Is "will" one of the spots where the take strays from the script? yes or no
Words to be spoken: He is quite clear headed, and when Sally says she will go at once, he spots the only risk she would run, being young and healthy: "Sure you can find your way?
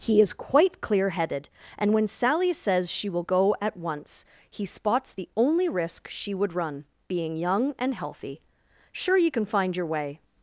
no